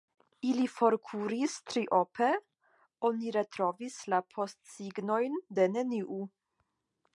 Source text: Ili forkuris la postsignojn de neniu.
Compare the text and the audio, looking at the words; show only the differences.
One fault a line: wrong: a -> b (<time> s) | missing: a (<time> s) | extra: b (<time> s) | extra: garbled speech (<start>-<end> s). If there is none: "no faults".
extra: triope oni retrovis (1.7 s)